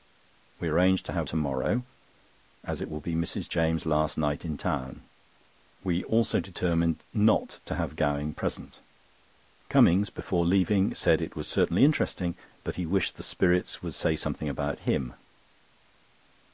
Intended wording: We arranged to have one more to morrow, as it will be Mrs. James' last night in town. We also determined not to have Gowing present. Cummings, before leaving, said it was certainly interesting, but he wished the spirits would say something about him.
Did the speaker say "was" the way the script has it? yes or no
yes